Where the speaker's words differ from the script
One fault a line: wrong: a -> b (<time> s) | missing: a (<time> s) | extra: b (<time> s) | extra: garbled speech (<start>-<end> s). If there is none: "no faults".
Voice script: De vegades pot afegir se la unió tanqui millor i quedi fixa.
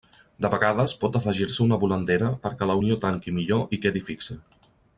extra: una volandera perquè (1.6 s)